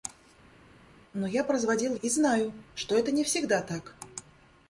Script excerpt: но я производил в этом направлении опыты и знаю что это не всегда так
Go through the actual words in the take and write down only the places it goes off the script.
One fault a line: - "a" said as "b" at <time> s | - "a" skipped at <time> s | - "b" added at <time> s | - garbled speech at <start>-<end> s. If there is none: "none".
- "этом направлении опыты" skipped at 2.0 s